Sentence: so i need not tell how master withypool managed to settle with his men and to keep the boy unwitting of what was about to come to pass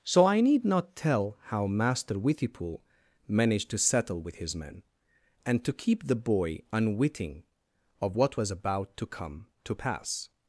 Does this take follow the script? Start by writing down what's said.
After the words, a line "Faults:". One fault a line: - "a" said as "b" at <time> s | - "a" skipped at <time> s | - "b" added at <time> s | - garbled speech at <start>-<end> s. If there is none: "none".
so i need not tell how master withypool managed to settle with his men and to keep the boy unwitting of what was about to come to pass
Faults:
none